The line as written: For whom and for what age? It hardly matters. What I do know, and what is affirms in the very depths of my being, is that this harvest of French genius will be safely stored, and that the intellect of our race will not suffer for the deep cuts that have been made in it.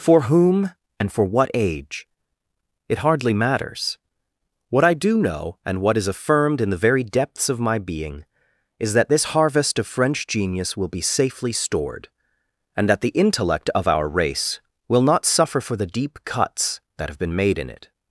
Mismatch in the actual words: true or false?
true